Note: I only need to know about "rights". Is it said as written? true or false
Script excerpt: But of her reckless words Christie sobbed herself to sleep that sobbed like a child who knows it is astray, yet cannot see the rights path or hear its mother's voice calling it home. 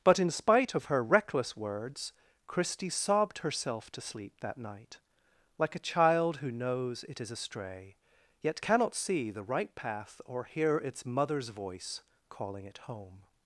false